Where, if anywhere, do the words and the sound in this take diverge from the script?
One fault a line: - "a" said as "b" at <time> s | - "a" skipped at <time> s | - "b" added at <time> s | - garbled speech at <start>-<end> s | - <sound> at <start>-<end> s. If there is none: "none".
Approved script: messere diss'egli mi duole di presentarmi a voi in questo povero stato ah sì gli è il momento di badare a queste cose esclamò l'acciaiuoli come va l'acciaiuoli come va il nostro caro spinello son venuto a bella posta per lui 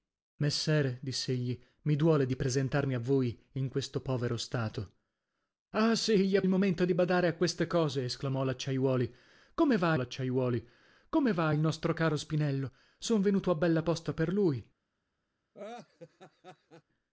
- laugh at 15.5-16.8 s